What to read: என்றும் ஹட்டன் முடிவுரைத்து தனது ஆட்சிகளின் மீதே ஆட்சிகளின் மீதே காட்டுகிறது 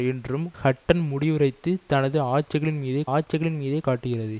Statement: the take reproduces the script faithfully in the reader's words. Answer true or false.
true